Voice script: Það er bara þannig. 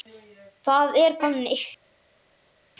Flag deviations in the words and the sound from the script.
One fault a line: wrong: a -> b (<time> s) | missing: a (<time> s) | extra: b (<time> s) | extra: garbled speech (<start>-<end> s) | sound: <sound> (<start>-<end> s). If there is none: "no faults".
missing: bara (1.2 s)